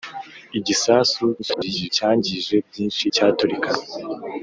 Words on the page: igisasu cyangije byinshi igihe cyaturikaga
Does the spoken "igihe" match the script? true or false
false